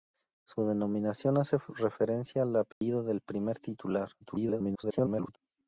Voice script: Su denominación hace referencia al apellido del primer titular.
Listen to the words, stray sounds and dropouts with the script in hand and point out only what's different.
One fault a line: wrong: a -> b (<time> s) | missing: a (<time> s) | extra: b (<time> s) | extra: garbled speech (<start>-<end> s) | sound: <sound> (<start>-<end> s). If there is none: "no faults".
sound: dropout (2.7-2.8 s)
extra: garbled speech (4.2-5.4 s)